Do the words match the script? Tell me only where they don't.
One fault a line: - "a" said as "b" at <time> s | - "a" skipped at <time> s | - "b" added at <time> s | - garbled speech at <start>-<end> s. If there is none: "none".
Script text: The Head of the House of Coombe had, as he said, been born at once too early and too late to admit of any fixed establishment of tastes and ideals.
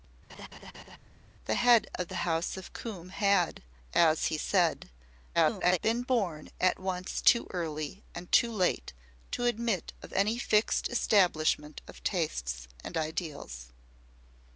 - garbled speech at 5.3-5.8 s